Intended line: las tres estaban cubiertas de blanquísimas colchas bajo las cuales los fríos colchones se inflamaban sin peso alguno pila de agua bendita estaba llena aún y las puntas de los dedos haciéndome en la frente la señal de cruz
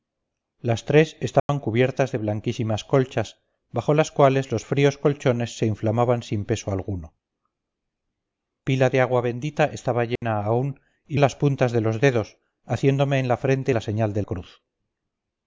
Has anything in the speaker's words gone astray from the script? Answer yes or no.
no